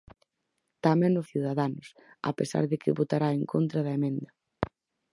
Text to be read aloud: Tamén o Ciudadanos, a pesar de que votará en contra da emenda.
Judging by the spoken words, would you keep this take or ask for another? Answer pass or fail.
pass